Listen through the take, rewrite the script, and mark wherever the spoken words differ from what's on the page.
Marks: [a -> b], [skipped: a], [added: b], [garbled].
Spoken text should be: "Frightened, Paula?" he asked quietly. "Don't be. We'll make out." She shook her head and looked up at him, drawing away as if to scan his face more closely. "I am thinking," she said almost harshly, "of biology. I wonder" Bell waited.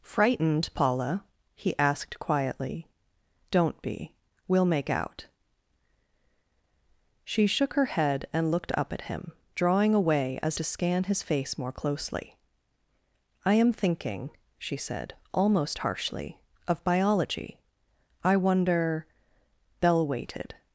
"Frightened, Paula?" he asked quietly. "Don't be. We'll make out." She shook her head and looked up at him, drawing away as [skipped: if] to scan his face more closely. "I am thinking," she said almost harshly, "of biology. I wonder" Bell waited.